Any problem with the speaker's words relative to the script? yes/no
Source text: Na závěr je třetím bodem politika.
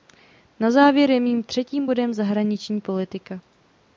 yes